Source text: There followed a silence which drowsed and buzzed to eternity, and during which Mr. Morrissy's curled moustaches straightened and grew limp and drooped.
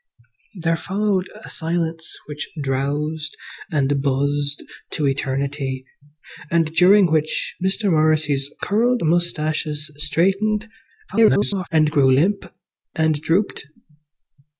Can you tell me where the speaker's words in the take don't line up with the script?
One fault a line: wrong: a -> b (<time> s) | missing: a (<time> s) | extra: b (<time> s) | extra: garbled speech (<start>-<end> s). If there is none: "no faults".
extra: garbled speech (11.1-11.7 s)